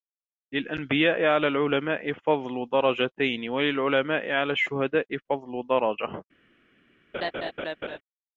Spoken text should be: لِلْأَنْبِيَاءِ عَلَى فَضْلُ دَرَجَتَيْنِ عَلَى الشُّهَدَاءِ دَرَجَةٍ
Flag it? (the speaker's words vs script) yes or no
yes